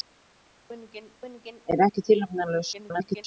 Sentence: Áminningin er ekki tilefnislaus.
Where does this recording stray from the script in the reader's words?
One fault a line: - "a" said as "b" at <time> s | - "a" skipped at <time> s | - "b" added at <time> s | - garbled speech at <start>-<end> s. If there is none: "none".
- "áminningin" added at 1.2 s
- garbled speech at 2.7-3.2 s